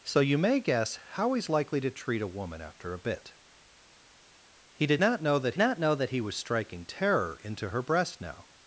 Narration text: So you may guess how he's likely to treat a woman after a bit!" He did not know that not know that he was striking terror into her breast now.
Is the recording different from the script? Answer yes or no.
no